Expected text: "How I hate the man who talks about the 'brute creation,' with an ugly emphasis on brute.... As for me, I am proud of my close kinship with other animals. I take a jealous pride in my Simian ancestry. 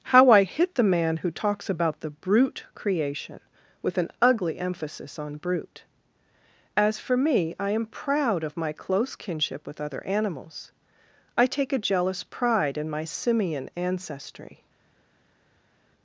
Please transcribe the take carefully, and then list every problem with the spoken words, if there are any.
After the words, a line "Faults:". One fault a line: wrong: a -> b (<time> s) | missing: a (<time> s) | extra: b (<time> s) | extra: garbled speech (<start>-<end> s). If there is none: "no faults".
"How I hit the man who talks about the 'brute creation,' with an ugly emphasis on brute.... As for me, I am proud of my close kinship with other animals. I take a jealous pride in my Simian ancestry.
Faults:
wrong: hate -> hit (0.5 s)